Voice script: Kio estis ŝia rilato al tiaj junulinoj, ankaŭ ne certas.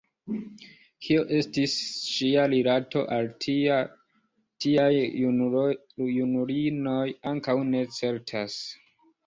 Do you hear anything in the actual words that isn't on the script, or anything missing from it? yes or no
no